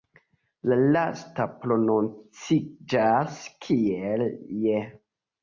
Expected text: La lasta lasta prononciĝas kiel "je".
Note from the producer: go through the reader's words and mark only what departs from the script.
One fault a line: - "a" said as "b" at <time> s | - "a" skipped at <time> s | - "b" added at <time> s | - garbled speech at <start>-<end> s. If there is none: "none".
- "lasta" skipped at 1.4 s